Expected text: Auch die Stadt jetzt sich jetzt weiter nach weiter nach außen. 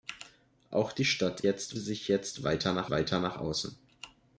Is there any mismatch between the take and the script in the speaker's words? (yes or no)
no